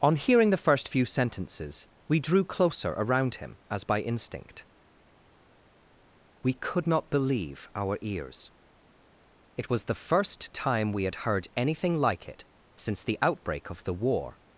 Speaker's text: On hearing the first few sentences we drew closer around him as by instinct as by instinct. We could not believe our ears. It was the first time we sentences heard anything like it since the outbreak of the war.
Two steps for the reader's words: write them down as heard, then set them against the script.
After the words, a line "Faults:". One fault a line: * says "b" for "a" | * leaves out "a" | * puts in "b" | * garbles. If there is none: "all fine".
On hearing the first few sentences we drew closer around him as by instinct. We could not believe our ears. It was the first time we had heard anything like it since the outbreak of the war.
Faults:
* leaves out "as by instinct"
* says "had" for "sentences"